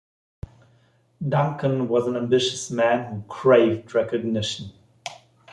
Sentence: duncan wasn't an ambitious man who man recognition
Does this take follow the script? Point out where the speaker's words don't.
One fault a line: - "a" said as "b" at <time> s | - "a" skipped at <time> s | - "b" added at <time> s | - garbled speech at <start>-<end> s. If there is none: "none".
- "wasn't" said as "was" at 1.9 s
- "man" said as "craved" at 3.3 s